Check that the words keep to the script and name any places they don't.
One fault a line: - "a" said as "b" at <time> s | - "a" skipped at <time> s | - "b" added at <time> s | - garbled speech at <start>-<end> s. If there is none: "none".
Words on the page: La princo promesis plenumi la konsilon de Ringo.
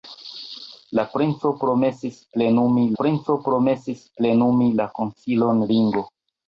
- "princo promesis plenumi" added at 3.0 s
- "de" skipped at 5.7 s